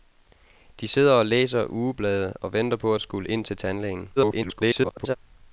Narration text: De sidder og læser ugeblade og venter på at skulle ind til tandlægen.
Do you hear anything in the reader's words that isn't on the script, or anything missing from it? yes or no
yes